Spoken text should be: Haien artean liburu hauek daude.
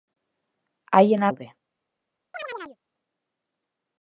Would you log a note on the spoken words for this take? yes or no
yes